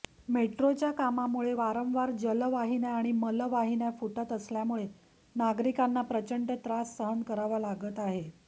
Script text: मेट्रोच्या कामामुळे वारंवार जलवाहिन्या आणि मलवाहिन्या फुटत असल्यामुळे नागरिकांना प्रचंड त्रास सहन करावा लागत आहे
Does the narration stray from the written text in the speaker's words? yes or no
no